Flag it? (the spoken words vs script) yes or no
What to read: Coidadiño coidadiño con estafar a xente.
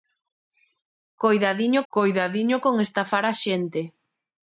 no